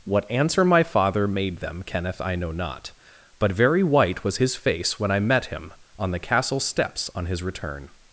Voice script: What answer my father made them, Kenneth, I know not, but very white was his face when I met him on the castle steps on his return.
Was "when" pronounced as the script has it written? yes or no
yes